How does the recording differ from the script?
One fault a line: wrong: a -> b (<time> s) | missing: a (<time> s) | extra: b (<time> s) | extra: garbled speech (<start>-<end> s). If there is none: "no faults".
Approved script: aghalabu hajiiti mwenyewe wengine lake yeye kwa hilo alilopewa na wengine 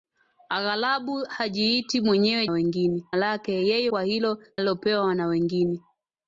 no faults